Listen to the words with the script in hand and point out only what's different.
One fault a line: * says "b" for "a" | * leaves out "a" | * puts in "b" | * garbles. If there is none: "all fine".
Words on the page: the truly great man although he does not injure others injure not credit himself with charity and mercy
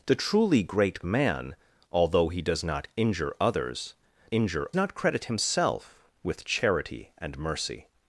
all fine